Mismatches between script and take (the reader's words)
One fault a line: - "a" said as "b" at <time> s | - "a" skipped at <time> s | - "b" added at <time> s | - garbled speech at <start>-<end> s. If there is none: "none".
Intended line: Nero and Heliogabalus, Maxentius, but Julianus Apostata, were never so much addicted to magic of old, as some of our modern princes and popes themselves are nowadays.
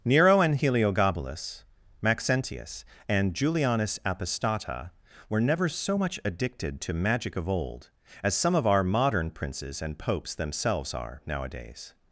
- "but" said as "and" at 3.1 s